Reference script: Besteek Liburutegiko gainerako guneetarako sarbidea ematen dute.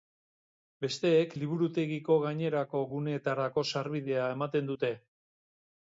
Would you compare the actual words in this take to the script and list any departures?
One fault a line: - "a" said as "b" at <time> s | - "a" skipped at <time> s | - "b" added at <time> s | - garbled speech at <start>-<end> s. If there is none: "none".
none